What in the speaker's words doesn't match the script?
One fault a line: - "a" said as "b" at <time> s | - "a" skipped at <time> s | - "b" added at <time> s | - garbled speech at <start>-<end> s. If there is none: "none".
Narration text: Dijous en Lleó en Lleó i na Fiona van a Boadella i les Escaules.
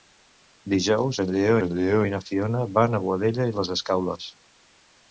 none